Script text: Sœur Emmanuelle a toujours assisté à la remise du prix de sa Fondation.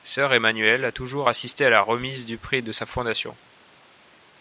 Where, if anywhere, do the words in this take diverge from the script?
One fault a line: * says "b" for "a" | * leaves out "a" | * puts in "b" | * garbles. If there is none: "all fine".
all fine